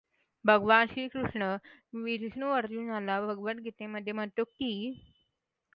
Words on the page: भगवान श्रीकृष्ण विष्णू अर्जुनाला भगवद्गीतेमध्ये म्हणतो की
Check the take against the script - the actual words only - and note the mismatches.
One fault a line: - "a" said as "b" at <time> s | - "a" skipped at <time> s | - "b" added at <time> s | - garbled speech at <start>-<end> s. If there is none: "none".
none